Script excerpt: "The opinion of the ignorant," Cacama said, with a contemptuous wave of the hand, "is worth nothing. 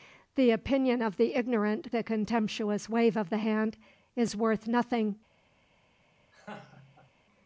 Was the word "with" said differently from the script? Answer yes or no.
yes